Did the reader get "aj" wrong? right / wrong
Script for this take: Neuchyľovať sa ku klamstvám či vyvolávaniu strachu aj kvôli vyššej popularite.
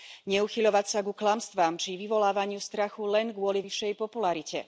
wrong